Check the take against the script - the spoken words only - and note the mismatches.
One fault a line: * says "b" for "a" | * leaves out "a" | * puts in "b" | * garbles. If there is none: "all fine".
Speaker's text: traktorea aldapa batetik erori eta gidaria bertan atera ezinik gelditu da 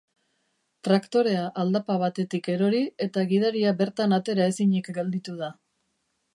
all fine